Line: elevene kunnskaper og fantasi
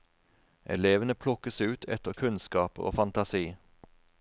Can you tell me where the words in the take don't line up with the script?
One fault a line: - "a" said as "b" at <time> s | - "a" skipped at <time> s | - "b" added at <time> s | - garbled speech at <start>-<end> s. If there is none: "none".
- "plukkes ut etter" added at 1.1 s